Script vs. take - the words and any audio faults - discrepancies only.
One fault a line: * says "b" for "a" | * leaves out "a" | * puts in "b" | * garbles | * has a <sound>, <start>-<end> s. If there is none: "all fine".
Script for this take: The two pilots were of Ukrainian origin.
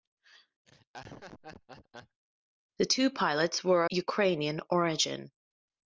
* has a laugh, 0.7-2.2 s
* leaves out "of"